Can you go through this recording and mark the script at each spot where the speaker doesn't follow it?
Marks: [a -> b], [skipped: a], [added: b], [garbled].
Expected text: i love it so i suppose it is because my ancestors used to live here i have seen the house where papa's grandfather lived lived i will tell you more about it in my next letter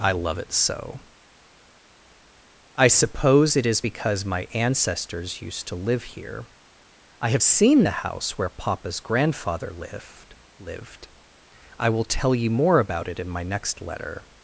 i love it so i suppose it is because my ancestors used to live here i have seen the house where papa's grandfather lived lived i will tell you more about it in my next letter